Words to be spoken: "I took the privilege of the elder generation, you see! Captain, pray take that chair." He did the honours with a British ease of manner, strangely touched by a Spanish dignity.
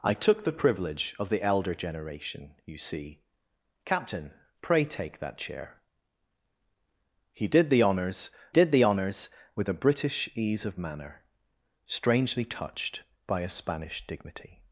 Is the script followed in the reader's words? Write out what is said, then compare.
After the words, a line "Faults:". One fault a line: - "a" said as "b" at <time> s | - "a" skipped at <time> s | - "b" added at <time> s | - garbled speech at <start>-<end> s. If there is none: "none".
"I took the privilege of the elder generation, you see! Captain, pray take that chair." He did the honours did the honours with a British ease of manner, strangely touched by a Spanish dignity.
Faults:
- "did the honours" added at 8.5 s